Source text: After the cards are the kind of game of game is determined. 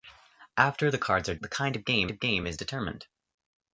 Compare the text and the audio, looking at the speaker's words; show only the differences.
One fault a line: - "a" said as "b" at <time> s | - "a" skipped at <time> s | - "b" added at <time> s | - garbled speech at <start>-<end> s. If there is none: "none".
none